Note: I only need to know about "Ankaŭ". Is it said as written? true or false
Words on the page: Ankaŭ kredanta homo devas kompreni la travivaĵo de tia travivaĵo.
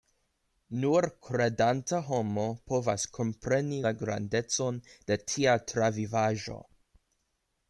false